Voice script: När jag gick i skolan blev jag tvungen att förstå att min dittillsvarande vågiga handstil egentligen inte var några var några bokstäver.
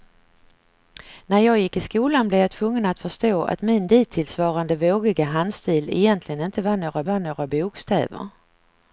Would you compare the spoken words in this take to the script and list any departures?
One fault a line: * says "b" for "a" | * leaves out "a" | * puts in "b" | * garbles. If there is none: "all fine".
all fine